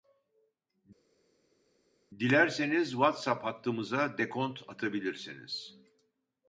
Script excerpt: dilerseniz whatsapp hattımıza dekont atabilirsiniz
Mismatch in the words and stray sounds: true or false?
false